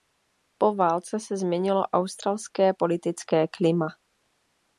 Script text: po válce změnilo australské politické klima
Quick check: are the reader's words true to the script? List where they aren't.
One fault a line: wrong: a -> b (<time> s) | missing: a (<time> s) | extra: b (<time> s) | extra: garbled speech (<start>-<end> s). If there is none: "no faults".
extra: se (1.2 s)